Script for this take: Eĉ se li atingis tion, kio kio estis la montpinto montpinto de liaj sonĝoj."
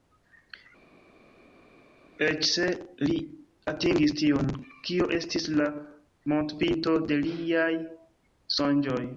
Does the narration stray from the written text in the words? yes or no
yes